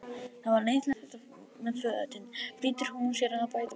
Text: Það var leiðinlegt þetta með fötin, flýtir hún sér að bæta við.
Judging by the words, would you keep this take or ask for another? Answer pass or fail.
pass